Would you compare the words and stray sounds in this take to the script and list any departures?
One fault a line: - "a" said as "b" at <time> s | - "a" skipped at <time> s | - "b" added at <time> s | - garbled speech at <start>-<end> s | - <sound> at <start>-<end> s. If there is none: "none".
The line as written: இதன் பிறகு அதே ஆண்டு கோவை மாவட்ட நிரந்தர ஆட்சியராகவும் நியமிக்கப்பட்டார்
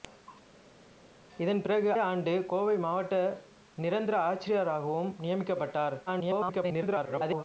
- "அதே" skipped at 1.9 s
- garbled speech at 6.1-7.4 s